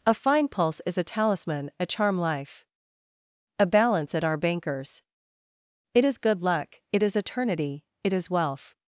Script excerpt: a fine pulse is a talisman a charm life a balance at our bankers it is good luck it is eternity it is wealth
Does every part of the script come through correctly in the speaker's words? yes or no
yes